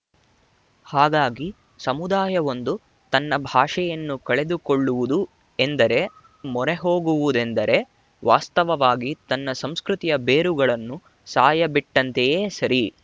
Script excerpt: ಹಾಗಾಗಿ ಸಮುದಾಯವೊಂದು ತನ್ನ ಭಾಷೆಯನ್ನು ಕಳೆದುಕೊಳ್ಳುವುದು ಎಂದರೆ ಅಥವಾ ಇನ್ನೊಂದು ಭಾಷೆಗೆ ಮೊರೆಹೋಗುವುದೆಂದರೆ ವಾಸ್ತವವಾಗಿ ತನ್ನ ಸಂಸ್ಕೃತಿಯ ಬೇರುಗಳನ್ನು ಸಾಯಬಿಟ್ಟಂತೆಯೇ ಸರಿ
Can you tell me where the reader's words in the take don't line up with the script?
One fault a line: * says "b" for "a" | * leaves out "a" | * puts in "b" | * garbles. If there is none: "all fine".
* leaves out "ಅಥವಾ ಇನ್ನೊಂದು ಭಾಷೆಗೆ"